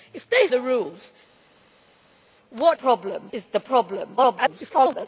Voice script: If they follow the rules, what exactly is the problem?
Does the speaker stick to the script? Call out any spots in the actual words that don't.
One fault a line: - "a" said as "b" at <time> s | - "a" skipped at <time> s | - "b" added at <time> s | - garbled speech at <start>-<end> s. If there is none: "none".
- "follow" skipped at 0.5 s
- "exactly" said as "problem" at 2.7 s
- garbled speech at 4.2-5.1 s